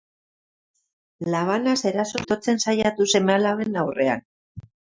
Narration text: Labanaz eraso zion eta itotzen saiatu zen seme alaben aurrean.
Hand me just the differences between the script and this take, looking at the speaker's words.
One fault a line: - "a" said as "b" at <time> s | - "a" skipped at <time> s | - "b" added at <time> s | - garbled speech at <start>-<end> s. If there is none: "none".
- "zion eta" skipped at 2.2 s
- "zen" skipped at 3.1 s